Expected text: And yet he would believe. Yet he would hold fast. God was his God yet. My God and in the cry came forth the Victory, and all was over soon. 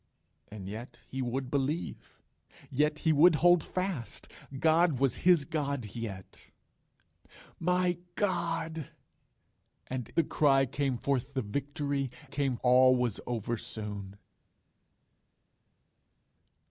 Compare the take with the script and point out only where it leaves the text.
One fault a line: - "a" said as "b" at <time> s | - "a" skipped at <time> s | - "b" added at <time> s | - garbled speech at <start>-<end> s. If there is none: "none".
- "in" skipped at 10.1 s
- "and" said as "came" at 12.3 s